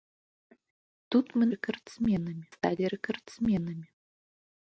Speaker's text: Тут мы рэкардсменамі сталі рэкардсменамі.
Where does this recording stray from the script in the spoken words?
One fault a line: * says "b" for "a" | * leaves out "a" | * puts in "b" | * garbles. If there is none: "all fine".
all fine